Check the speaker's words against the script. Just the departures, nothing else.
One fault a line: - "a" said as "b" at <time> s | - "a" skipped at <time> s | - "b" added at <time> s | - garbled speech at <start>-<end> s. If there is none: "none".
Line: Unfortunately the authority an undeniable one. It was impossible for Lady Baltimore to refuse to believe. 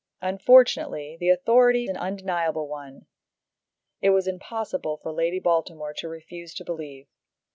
none